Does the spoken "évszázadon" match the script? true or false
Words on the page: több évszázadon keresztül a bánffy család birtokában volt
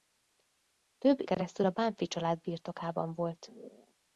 false